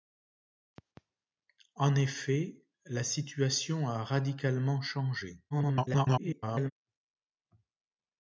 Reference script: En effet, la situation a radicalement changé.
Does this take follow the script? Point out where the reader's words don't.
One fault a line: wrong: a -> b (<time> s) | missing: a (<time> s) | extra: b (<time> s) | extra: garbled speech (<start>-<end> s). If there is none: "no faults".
extra: garbled speech (5.5-6.7 s)